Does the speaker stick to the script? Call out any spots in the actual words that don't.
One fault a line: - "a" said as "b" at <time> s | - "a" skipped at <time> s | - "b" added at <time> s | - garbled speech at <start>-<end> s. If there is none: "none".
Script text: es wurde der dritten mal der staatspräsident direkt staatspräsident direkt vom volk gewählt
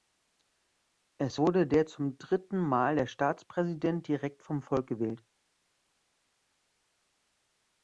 - "zum" added at 1.9 s
- "staatspräsident direkt" skipped at 4.4 s